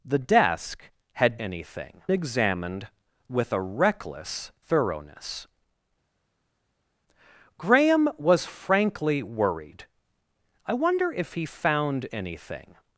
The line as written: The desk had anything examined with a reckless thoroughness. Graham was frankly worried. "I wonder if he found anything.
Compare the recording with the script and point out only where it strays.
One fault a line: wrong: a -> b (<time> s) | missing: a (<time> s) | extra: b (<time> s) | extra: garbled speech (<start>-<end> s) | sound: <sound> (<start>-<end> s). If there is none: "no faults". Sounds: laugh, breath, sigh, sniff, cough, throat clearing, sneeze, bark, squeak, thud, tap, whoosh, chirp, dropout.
no faults